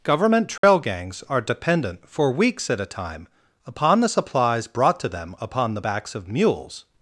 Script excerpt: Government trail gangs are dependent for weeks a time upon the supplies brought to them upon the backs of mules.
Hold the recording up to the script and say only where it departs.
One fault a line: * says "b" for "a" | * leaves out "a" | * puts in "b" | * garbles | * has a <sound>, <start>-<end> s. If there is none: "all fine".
* has a dropout, 0.6-0.6 s
* puts in "at"